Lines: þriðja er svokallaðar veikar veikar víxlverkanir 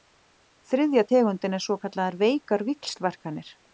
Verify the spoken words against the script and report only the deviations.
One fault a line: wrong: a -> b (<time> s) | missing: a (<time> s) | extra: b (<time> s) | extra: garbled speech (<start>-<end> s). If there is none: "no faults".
extra: tegundin (1.1 s)
missing: veikar (2.7 s)